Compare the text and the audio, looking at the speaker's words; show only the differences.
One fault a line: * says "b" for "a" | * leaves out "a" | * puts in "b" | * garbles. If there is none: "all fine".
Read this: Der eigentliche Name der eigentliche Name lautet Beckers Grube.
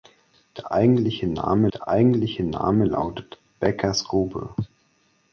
all fine